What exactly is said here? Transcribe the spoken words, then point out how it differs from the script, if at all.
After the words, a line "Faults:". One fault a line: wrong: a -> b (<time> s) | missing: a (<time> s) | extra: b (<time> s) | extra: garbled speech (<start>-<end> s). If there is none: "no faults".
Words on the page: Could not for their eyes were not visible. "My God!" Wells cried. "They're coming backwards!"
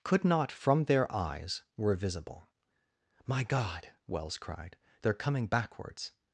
Could not from their eyes were visible. "My God!" Wells cried. "They're coming backwards!"
Faults:
wrong: for -> from (0.5 s)
missing: not (1.9 s)